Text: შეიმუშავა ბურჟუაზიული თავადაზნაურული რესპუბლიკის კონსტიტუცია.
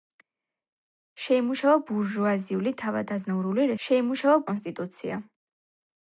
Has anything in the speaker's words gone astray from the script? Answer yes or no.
yes